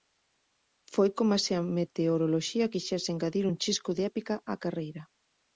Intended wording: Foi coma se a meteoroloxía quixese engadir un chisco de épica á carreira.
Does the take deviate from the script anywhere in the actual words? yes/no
no